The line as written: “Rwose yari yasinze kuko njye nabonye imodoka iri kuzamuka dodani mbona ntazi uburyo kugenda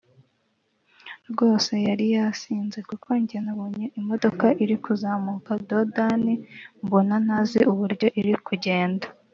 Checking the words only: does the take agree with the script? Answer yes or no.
no